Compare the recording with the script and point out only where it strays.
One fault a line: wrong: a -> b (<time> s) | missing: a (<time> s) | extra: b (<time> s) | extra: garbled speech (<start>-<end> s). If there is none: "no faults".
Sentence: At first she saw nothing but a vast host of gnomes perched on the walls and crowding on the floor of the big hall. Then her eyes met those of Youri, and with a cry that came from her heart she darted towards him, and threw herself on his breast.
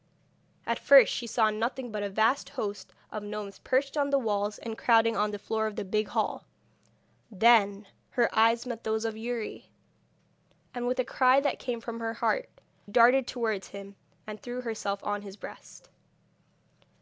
missing: she (12.5 s)